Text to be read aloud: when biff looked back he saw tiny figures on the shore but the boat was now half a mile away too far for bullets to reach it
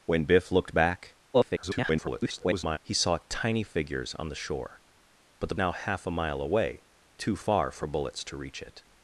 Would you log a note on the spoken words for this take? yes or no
yes